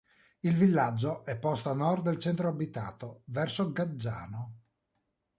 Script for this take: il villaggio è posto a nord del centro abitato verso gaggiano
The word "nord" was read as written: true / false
true